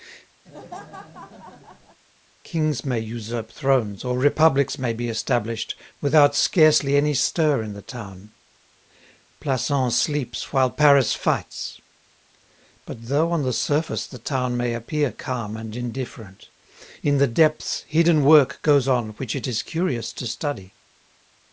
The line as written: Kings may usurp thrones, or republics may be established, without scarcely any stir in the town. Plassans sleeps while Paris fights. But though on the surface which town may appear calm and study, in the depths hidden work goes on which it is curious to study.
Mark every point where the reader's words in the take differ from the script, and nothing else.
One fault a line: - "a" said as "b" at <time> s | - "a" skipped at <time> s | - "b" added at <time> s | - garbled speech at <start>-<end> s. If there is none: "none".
- "which" said as "the" at 14.0 s
- "study" said as "indifferent" at 15.7 s